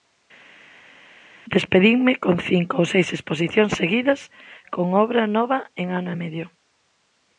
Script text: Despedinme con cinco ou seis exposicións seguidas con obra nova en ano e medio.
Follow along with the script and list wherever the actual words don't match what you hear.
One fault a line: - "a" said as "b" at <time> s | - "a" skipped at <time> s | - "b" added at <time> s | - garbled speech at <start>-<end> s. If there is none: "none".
none